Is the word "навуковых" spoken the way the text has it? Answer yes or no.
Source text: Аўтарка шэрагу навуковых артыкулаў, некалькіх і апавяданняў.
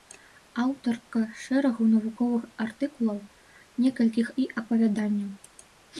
yes